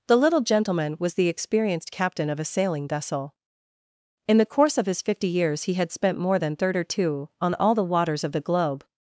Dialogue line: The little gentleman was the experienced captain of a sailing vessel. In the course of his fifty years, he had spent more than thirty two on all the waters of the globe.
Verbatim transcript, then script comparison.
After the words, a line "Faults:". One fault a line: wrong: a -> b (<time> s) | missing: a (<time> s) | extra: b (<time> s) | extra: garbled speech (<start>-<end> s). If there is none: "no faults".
The little gentleman was the experienced captain of a sailing vessel. In the course of his fifty years, he had spent more than thirty two on all the waters of the globe.
Faults:
no faults